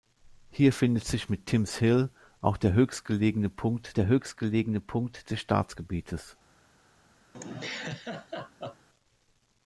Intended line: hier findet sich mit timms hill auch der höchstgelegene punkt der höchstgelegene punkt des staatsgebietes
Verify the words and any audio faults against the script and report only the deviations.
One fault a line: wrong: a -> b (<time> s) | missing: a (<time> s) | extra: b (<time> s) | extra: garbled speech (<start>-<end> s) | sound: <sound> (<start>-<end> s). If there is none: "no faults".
sound: laugh (7.3-8.9 s)